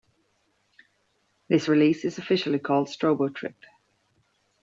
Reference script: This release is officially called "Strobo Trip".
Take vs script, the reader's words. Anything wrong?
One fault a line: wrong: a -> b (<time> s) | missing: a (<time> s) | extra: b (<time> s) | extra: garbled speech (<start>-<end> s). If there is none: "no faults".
no faults